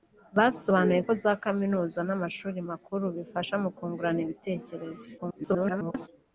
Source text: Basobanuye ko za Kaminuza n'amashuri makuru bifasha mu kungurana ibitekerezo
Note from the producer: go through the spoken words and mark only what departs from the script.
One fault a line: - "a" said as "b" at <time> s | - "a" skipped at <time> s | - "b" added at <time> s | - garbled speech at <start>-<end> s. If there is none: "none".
- garbled speech at 5.2-6.1 s